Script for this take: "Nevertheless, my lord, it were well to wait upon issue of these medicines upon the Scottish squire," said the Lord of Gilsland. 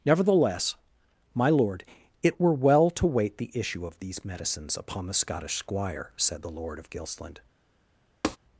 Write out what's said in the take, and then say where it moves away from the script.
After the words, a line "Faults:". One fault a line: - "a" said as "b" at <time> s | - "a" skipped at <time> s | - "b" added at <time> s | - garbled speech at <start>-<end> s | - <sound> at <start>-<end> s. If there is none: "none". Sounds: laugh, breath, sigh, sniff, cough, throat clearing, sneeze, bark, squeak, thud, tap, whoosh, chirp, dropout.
"Nevertheless, my lord, it were well to wait the issue of these medicines upon the Scottish squire," said the Lord of Gilsland.
Faults:
- "upon" said as "the" at 3.4 s
- tap at 8.2-8.4 s